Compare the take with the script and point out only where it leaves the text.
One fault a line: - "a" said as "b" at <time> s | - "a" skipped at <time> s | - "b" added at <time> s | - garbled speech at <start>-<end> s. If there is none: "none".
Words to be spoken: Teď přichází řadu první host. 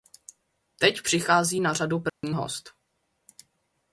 - "na" added at 1.6 s